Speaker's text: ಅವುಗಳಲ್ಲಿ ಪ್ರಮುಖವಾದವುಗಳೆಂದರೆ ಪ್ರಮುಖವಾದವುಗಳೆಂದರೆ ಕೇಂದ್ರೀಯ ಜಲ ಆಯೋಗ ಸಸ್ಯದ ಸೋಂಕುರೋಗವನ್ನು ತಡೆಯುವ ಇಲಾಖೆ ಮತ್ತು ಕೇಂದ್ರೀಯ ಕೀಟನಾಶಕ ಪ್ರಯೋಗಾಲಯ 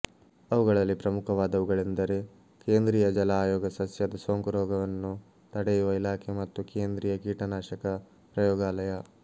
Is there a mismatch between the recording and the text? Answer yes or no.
yes